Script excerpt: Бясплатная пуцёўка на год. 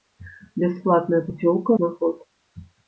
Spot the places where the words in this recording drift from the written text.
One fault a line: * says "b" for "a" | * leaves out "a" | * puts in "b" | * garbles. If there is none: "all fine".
all fine